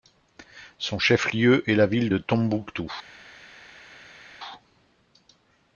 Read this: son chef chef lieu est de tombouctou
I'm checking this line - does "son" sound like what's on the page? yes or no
yes